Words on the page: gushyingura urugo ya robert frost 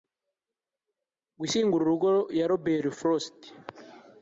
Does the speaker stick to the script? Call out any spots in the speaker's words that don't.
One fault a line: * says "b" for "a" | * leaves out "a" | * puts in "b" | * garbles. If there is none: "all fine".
all fine